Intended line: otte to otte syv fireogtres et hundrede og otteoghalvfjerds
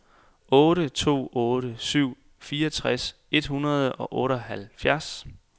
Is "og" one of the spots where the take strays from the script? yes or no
no